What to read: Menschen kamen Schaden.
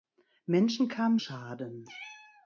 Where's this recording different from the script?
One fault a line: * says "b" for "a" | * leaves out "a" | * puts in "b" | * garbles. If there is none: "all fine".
all fine